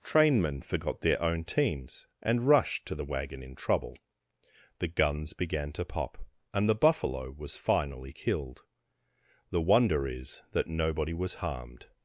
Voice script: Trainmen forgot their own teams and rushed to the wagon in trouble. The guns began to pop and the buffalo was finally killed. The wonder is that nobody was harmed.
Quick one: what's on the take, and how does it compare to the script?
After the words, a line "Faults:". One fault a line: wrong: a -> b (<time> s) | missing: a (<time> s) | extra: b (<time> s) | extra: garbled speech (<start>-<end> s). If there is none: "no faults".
Trainmen forgot their own teams and rushed to the wagon in trouble. The guns began to pop and the buffalo was finally killed. The wonder is that nobody was harmed.
Faults:
no faults